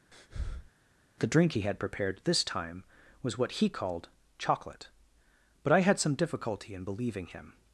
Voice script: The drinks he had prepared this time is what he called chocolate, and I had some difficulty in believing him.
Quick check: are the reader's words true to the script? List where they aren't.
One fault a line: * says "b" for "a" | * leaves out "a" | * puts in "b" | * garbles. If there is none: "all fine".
* says "drink" for "drinks"
* says "was" for "is"
* says "but" for "and"